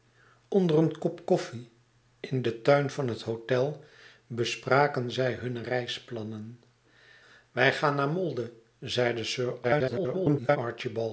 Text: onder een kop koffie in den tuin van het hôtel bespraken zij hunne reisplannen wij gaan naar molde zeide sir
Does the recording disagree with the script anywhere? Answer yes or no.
yes